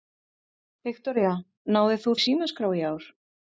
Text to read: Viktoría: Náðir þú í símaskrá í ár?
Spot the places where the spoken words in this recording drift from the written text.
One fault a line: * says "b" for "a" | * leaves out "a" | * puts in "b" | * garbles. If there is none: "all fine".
all fine